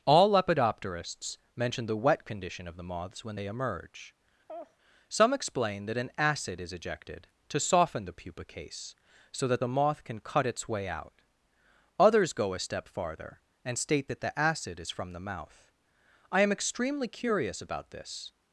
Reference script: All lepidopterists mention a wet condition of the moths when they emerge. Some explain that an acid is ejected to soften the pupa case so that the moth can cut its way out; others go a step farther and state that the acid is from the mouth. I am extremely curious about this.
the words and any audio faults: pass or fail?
fail